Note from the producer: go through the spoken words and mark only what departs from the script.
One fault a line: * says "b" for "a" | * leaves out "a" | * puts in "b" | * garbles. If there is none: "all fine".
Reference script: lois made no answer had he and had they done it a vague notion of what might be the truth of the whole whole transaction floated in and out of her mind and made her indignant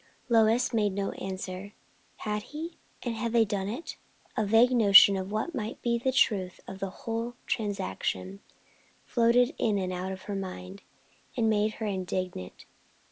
* leaves out "whole"